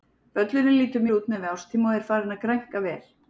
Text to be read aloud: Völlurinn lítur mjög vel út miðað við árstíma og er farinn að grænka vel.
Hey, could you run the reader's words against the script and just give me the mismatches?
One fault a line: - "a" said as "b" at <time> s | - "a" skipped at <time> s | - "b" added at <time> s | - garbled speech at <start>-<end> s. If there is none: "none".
- "mjög" skipped at 1.0 s